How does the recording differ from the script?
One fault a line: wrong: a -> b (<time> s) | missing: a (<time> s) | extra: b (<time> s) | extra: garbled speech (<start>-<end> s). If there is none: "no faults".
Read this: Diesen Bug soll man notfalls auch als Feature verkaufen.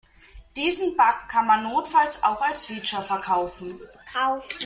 wrong: soll -> kann (1.3 s)